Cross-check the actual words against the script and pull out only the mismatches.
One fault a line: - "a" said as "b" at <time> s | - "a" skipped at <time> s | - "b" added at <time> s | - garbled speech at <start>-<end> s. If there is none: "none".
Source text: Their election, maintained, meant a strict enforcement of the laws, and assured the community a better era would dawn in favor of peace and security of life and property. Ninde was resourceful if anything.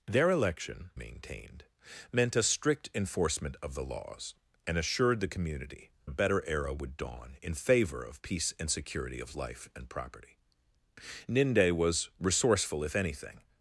none